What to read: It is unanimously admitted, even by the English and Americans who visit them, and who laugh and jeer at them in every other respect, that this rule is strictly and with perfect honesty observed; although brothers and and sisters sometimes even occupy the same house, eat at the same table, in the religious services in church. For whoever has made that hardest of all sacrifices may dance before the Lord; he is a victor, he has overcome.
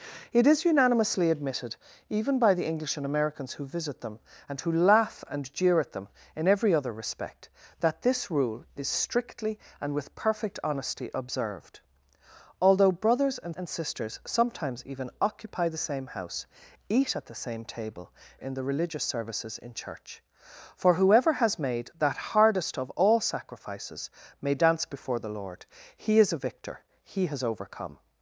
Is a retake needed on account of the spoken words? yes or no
no